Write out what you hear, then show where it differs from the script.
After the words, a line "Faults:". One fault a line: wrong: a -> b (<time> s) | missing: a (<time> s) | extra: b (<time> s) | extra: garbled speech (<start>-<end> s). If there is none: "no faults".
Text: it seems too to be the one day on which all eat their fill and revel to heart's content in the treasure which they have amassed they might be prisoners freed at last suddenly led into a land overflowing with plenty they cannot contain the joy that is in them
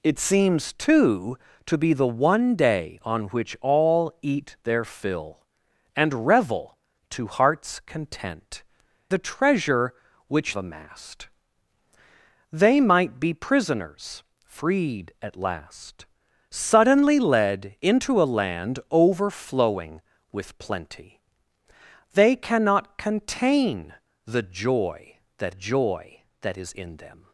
it seems too to be the one day on which all eat their fill and revel to heart's content the treasure which amassed they might be prisoners freed at last suddenly led into a land overflowing with plenty they cannot contain the joy that joy that is in them
Faults:
missing: in (8.6 s)
missing: they have (10.6 s)
extra: joy that (25.5 s)